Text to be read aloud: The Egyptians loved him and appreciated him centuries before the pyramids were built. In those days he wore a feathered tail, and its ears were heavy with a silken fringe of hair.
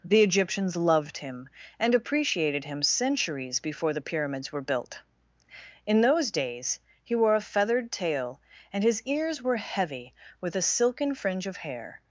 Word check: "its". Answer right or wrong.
wrong